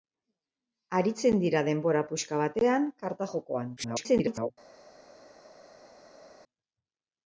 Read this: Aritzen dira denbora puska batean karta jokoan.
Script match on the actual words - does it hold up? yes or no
no